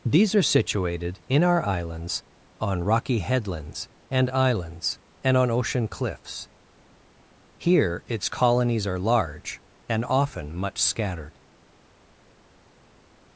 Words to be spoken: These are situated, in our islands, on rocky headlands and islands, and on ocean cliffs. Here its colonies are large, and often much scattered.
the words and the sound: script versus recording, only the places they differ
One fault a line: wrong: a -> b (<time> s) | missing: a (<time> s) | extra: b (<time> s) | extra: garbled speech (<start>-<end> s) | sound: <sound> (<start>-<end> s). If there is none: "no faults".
no faults